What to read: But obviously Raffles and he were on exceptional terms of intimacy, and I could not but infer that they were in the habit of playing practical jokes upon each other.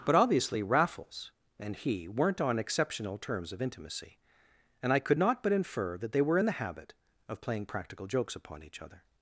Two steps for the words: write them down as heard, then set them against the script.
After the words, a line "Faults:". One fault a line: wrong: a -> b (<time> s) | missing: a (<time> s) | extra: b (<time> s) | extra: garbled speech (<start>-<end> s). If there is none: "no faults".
But obviously Raffles and he weren't on exceptional terms of intimacy, and I could not but infer that they were in the habit of playing practical jokes upon each other.
Faults:
wrong: were -> weren't (2.1 s)